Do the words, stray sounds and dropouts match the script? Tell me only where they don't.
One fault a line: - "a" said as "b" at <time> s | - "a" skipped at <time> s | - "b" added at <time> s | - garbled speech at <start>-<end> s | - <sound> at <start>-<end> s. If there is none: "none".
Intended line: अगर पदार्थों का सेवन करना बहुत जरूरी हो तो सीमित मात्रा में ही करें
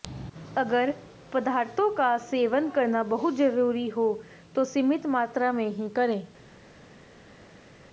none